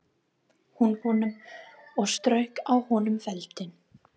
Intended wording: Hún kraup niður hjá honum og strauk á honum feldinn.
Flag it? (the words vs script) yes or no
yes